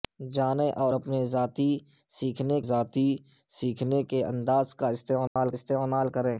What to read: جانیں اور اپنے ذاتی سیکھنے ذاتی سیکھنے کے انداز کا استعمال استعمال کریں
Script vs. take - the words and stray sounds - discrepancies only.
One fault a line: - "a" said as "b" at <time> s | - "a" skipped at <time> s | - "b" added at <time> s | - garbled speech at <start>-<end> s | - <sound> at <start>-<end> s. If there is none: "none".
- dropout at 5.3-5.4 s